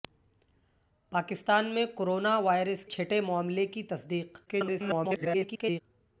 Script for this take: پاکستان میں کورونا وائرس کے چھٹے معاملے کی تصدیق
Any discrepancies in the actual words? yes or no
yes